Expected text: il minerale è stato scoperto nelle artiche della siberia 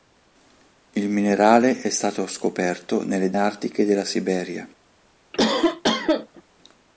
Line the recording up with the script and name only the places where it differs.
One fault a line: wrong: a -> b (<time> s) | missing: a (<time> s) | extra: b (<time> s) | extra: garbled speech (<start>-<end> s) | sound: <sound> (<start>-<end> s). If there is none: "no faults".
sound: cough (5.3-6.4 s)